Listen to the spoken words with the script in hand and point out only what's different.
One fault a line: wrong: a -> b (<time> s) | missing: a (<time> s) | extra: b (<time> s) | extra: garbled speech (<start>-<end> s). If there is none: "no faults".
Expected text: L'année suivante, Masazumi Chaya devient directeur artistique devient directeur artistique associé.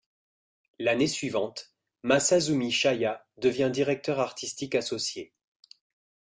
missing: devient directeur artistique (4.8 s)